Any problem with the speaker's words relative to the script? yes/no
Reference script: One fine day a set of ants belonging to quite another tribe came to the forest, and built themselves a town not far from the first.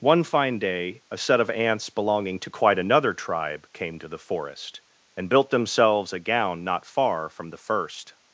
yes